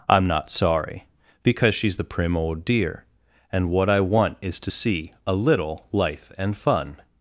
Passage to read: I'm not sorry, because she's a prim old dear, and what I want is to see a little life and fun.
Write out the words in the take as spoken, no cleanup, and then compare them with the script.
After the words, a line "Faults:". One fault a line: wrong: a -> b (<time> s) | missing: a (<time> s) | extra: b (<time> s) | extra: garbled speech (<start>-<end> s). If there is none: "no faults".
I'm not sorry, because she's the prim old dear, and what I want is to see a little life and fun.
Faults:
wrong: a -> the (2.0 s)